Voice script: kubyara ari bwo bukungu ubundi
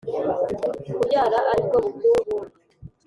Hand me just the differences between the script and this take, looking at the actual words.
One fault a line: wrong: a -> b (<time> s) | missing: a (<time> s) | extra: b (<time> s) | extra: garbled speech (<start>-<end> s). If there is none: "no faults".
no faults